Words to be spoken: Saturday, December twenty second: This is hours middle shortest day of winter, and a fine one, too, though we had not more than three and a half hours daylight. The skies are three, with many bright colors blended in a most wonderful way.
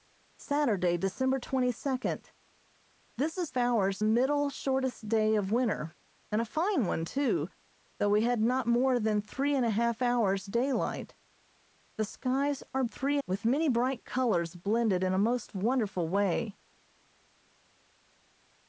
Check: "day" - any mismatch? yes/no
no